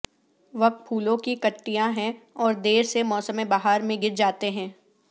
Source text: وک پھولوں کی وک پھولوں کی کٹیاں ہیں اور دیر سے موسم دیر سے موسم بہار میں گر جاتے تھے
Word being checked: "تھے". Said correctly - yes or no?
no